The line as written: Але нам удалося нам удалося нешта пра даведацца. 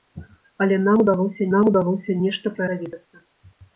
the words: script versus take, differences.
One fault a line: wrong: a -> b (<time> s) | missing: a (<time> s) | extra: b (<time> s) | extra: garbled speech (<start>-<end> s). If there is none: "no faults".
no faults